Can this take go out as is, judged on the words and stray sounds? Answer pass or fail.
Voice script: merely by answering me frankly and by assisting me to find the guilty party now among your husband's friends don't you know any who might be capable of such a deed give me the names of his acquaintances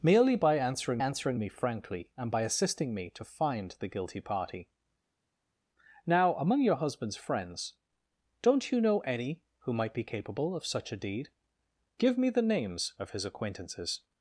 fail